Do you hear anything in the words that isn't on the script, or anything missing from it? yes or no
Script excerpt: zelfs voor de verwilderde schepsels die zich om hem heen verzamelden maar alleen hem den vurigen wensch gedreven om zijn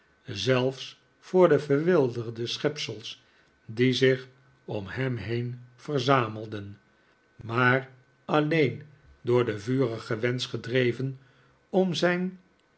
yes